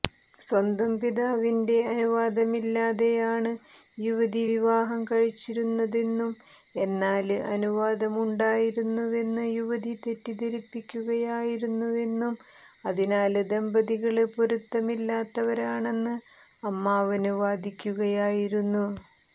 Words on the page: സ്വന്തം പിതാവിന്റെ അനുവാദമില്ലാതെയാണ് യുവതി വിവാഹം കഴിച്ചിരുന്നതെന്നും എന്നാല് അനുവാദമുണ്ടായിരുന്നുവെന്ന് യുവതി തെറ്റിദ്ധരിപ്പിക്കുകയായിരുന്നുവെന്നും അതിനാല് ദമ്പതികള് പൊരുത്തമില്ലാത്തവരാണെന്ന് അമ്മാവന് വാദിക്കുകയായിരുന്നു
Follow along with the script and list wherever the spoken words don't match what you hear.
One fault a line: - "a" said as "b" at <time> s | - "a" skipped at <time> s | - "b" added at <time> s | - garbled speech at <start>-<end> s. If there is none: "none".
none